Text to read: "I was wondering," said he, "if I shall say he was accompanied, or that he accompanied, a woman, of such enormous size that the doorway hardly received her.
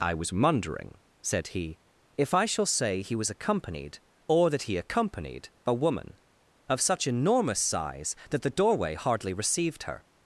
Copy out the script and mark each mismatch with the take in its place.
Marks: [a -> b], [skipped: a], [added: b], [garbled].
"I was wondering," said he, "if I shall say he was accompanied, or that he accompanied, a woman, of such enormous size that the doorway hardly received her.